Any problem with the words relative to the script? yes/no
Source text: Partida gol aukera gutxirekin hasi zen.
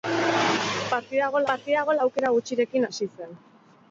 yes